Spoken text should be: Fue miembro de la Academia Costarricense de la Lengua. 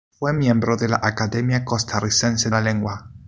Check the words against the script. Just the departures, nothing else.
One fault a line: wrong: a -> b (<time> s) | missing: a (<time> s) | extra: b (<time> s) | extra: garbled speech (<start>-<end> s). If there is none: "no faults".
missing: de (2.5 s)